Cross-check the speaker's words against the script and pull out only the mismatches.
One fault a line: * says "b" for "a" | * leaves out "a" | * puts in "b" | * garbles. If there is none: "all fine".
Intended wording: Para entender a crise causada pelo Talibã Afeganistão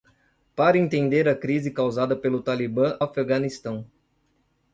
all fine